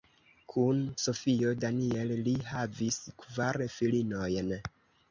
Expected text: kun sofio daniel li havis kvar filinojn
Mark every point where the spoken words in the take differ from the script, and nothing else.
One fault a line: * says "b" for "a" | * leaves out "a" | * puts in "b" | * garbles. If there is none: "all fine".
all fine